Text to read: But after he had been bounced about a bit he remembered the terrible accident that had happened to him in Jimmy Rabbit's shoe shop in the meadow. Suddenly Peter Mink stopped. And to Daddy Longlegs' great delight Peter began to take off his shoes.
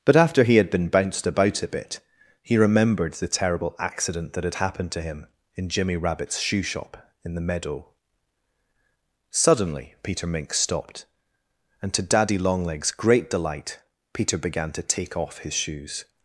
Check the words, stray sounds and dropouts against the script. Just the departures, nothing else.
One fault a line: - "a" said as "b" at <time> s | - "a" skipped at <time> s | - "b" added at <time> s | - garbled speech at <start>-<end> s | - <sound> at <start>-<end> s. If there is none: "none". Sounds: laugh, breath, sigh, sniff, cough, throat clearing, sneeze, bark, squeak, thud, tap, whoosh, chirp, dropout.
none